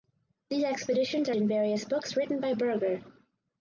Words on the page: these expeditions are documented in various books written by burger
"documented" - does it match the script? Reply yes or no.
no